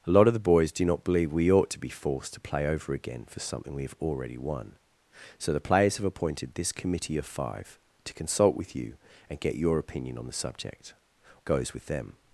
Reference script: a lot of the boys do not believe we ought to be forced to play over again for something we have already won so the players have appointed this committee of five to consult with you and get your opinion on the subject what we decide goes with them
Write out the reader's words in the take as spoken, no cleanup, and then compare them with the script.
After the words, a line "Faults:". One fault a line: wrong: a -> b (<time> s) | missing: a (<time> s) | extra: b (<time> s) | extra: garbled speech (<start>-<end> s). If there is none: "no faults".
a lot of the boys do not believe we ought to be forced to play over again for something we have already won so the players have appointed this committee of five to consult with you and get your opinion on the subject goes with them
Faults:
missing: what we decide (10.9 s)